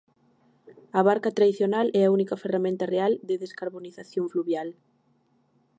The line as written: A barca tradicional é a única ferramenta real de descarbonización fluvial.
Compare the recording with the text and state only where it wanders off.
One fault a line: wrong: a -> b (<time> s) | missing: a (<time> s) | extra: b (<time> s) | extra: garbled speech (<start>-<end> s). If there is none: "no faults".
no faults